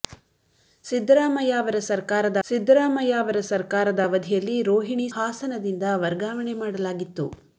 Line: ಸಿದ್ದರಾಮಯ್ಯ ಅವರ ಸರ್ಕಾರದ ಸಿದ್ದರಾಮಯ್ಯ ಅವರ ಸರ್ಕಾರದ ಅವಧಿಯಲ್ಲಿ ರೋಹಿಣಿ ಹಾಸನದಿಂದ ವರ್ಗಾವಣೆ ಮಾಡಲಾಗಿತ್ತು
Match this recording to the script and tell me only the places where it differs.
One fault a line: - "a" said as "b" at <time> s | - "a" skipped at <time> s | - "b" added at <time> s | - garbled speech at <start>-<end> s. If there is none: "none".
none